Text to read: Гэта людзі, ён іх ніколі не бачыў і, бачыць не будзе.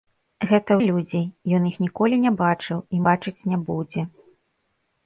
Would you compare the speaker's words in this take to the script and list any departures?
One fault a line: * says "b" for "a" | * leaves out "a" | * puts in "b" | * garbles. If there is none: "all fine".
all fine